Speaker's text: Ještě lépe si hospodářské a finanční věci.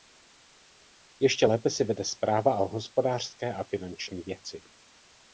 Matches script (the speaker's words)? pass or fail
fail